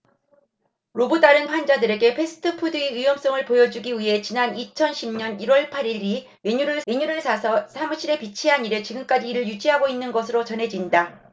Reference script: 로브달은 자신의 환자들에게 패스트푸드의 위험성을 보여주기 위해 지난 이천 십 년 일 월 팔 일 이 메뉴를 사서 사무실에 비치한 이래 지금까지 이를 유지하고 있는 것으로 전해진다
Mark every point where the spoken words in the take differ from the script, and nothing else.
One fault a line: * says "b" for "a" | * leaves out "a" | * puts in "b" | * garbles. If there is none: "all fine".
* leaves out "자신의"
* puts in "메뉴를"